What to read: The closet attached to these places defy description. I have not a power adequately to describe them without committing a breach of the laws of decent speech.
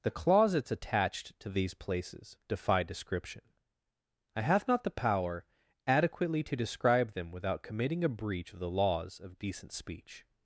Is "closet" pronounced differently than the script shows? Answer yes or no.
yes